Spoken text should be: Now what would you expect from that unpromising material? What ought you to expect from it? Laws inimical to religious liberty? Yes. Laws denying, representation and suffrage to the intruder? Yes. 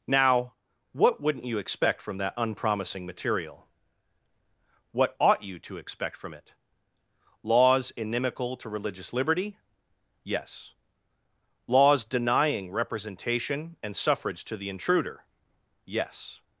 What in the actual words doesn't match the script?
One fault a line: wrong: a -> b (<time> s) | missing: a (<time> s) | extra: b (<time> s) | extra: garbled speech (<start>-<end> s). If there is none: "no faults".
wrong: would -> wouldn't (1.2 s)